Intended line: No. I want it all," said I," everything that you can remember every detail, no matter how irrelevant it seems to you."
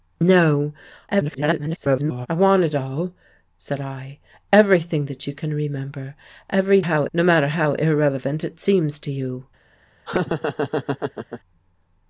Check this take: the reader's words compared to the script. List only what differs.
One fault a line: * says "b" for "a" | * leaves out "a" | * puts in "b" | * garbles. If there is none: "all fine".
* garbles
* says "how" for "detail"